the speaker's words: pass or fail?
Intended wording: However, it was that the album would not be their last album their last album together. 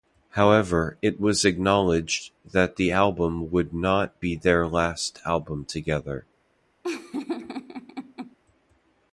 fail